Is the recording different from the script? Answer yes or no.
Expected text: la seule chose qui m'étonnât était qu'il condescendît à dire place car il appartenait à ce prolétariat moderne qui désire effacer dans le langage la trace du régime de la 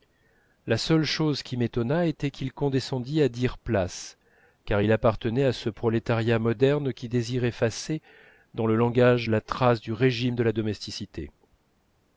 no